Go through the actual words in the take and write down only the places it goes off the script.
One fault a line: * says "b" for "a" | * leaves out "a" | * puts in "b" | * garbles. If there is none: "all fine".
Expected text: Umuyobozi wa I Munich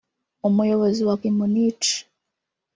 all fine